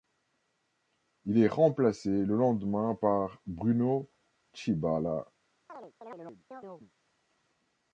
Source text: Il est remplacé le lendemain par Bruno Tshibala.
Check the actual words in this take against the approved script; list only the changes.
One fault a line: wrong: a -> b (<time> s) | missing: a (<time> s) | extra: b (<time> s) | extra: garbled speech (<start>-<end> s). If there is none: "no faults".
no faults